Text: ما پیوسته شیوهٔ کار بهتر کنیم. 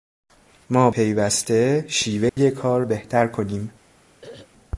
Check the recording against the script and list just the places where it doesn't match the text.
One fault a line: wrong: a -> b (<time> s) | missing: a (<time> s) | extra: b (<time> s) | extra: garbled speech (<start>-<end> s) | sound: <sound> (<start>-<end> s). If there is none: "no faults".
sound: dropout (2.3-2.4 s)
sound: throat clearing (4.2-4.5 s)